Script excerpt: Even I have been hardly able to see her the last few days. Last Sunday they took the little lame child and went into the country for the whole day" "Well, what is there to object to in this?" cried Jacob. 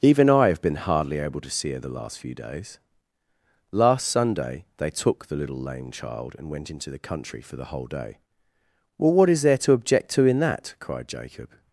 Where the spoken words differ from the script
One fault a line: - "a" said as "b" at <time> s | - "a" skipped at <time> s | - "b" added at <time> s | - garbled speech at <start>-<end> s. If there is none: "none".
- "this" said as "that" at 10.4 s